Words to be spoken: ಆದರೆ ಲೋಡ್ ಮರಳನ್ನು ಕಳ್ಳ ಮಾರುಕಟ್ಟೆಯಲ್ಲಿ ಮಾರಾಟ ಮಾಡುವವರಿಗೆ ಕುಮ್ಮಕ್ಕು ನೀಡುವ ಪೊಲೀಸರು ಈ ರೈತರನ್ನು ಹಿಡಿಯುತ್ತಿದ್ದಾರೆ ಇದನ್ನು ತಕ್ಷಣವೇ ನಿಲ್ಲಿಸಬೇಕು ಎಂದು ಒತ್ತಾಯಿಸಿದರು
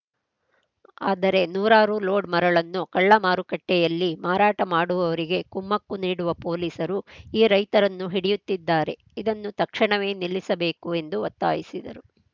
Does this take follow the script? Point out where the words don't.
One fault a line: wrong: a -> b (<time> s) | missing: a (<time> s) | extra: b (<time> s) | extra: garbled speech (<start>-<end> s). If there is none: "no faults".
extra: ನೂರಾರು (1.5 s)